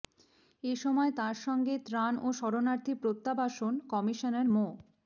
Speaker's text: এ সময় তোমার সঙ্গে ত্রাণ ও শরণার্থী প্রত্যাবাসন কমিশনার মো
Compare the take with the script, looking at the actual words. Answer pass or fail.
fail